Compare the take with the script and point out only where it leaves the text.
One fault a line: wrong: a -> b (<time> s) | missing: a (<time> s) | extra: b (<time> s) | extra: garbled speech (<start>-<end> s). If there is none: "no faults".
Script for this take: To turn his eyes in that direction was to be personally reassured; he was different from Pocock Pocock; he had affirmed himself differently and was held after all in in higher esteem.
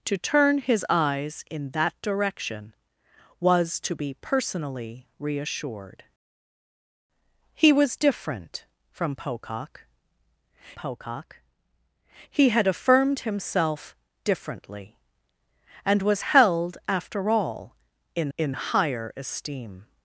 no faults